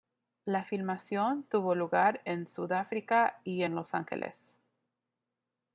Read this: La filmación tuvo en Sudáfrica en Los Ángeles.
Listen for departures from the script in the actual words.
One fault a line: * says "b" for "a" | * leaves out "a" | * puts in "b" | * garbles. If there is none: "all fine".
* puts in "lugar"
* puts in "y"